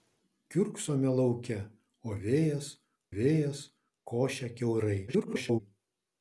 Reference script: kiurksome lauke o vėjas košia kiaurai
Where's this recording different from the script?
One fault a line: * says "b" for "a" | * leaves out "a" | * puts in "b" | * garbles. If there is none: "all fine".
* puts in "vėjas"
* garbles